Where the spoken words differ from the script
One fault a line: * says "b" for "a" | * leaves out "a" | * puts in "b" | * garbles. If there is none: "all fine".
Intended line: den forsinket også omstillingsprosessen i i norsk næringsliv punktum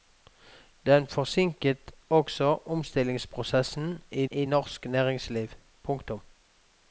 all fine